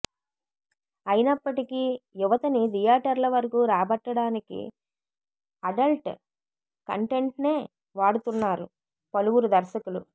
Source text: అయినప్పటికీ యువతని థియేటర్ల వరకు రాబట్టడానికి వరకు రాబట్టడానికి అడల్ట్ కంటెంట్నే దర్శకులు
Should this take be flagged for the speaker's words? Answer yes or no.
yes